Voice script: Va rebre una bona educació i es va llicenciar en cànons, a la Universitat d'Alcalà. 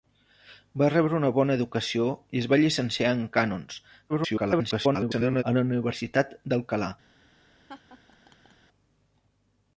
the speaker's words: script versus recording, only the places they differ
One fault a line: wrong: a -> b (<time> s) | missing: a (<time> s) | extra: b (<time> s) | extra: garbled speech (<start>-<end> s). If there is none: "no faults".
extra: garbled speech (4.1-5.4 s)